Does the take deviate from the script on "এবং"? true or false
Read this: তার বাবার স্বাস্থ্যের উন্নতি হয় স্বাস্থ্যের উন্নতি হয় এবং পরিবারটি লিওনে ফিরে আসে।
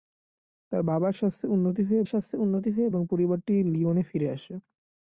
false